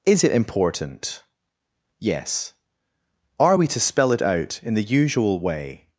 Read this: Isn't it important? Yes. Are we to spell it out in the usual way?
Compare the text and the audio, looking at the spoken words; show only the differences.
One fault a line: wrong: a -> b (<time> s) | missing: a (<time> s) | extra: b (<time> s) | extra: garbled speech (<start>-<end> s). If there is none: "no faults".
wrong: Isn't -> Is (0.0 s)